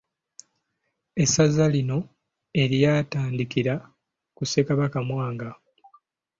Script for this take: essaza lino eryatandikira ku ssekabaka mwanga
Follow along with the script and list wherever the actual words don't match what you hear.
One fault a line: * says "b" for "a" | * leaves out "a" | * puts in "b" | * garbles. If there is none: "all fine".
all fine